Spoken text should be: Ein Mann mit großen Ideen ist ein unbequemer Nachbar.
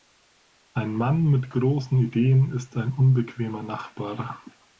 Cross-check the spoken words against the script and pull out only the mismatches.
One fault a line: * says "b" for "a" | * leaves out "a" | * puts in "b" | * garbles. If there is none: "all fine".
all fine